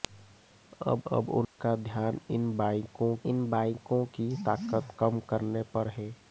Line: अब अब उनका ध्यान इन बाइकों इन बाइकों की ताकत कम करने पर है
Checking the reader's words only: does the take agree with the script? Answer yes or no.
yes